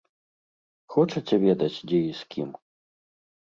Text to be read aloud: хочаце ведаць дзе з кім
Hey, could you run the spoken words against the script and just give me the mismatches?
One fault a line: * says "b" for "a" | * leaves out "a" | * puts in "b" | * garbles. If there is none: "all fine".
* puts in "і"